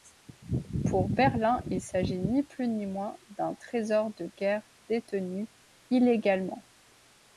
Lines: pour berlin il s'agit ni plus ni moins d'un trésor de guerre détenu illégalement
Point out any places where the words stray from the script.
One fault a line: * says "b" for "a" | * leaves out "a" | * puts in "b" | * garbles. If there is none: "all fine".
all fine